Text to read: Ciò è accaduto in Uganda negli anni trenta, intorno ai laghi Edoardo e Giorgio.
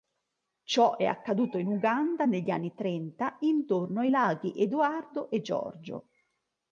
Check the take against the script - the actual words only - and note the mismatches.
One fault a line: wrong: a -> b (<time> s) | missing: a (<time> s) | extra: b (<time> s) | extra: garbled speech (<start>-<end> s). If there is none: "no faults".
no faults